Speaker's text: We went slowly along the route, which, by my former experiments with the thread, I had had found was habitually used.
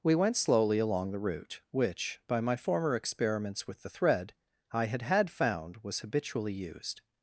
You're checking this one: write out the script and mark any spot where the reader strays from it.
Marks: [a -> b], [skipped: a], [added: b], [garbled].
We went slowly along the route, which, by my former experiments with the thread, I had had found was habitually used.